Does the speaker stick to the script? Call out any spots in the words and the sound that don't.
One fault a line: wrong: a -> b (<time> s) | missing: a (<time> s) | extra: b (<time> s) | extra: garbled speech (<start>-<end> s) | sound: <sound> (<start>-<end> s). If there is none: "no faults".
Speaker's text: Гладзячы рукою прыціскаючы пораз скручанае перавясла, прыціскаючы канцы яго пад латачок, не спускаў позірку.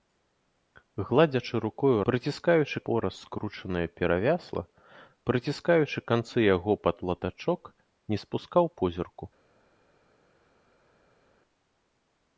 no faults